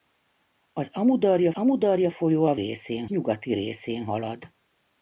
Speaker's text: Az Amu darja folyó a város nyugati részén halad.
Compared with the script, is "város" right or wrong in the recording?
wrong